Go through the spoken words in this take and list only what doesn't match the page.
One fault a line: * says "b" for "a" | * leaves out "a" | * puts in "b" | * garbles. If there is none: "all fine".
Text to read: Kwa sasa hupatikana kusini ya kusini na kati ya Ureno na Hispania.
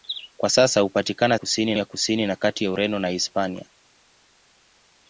all fine